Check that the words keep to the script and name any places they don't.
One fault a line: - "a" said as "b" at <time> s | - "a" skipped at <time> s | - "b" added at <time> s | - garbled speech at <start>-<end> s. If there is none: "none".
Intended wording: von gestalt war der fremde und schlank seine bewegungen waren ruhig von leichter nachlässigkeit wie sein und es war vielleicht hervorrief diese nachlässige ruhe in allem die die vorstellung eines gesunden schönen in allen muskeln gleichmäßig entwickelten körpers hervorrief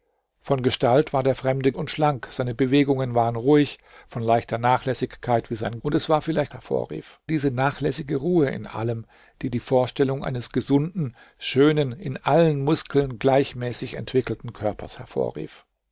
none